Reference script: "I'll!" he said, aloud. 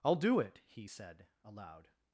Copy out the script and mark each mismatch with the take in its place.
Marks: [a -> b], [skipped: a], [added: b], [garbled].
"I'll!" [added: do it] he said, aloud.